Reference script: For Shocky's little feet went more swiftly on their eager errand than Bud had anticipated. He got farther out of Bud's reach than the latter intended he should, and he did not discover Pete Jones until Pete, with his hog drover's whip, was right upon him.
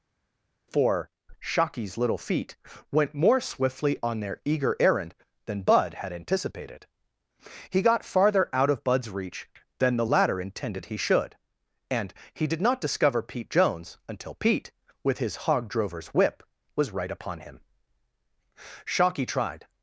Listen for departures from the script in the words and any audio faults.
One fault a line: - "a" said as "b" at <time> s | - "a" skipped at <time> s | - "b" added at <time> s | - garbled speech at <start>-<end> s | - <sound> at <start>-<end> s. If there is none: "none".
- "Shocky tried" added at 18.9 s